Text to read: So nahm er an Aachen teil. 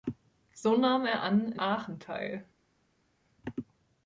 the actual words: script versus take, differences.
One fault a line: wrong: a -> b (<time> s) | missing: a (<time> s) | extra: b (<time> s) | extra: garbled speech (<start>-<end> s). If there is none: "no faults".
no faults